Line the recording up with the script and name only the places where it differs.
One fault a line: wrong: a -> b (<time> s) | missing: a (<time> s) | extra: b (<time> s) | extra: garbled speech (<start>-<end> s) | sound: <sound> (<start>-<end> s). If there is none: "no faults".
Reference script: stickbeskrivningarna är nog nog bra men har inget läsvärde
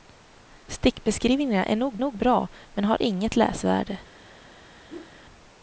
sound: whoosh (4.9-5.2 s)